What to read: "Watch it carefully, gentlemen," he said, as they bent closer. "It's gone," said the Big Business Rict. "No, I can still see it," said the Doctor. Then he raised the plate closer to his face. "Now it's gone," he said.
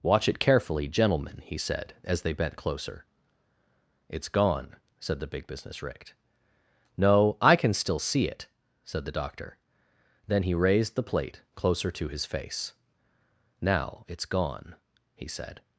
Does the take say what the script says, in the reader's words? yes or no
yes